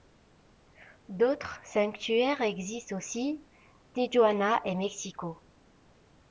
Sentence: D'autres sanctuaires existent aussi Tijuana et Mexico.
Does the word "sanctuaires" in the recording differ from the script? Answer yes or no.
no